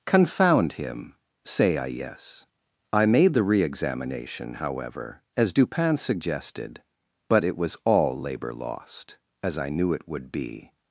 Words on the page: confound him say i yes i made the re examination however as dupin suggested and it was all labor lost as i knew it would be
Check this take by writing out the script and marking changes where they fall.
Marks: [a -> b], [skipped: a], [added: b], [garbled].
confound him say i yes i made the re examination however as dupin suggested [and -> but] it was all labor lost as i knew it would be